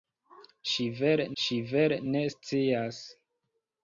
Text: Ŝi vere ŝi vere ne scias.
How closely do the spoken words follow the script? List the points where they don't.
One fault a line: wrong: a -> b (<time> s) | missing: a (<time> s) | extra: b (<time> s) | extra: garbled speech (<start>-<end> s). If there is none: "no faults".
no faults